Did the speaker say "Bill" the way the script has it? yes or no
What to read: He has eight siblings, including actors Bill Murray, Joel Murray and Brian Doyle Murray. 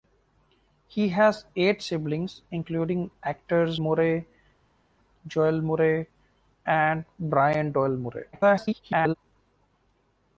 no